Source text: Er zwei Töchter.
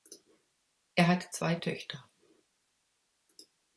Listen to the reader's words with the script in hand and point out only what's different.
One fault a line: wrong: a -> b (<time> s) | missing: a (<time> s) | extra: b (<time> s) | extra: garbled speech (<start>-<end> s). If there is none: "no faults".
extra: hat (1.1 s)